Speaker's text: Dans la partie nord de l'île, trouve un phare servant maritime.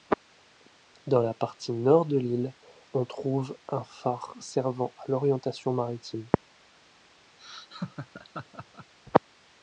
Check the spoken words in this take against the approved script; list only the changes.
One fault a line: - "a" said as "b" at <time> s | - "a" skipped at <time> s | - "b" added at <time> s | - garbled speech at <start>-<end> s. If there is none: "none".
- "on" added at 2.9 s
- "à l'orientation" added at 5.0 s